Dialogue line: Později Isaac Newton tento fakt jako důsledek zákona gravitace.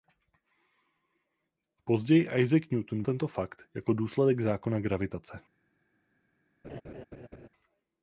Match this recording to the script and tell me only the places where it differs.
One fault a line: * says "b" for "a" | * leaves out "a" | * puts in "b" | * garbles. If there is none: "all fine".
all fine